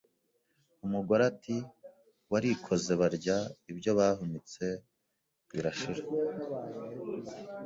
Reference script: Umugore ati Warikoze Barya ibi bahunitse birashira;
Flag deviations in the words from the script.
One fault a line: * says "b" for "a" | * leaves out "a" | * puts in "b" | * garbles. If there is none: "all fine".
* says "ibyo" for "ibi"